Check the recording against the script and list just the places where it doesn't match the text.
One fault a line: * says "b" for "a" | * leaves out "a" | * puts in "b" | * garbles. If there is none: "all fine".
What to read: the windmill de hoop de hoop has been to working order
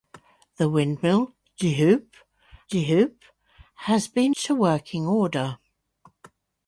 all fine